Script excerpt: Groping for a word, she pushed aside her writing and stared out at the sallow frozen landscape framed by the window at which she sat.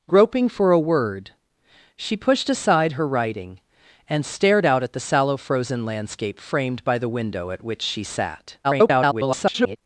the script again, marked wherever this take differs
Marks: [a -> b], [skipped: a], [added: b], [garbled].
Groping for a word, she pushed aside her writing and stared out at the sallow frozen landscape framed by the window at which she sat. [garbled]